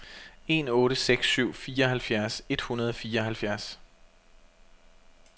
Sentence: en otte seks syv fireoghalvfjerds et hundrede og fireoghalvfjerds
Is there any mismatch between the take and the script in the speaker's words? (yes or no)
no